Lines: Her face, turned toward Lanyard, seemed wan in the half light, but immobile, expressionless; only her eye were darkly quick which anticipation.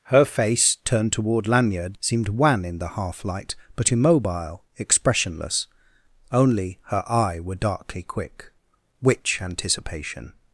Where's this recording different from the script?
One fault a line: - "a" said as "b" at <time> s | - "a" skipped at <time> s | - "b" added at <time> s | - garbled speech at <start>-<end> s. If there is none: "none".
none